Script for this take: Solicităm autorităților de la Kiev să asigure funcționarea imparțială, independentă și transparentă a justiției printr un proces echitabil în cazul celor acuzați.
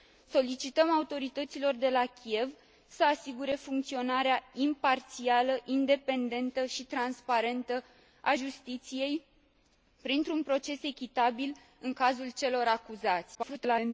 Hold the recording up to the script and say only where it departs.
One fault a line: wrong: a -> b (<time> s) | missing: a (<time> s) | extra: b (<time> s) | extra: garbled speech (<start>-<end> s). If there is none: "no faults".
extra: garbled speech (13.3-13.9 s)